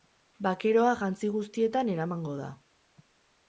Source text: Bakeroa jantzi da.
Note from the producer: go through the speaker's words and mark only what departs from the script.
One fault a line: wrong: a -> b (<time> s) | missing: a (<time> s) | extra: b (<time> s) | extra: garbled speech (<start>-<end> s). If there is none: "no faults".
extra: guztietan eramango (1.3 s)